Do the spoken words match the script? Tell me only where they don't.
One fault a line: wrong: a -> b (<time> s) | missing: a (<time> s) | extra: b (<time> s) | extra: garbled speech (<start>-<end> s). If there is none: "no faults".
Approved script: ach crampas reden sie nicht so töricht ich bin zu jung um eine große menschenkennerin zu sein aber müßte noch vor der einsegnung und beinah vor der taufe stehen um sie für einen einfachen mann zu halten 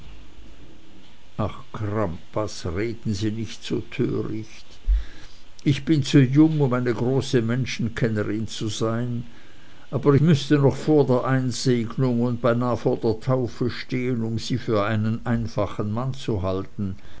no faults